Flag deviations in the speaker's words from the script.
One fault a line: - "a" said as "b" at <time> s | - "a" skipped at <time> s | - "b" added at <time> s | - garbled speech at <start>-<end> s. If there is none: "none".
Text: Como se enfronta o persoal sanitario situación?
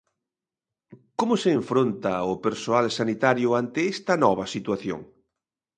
- "ante esta nova" added at 3.6 s